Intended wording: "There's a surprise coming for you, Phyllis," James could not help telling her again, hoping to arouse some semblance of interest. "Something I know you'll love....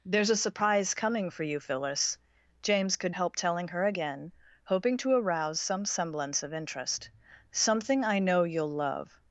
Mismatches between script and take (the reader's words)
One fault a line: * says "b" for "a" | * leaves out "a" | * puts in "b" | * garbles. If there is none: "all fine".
* leaves out "not"